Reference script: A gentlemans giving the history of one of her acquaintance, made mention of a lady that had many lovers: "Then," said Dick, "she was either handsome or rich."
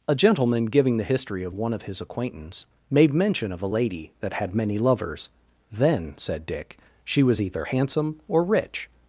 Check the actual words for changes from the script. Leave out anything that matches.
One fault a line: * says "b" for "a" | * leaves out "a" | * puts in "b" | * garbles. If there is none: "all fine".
* says "gentleman" for "gentlemans"
* says "his" for "her"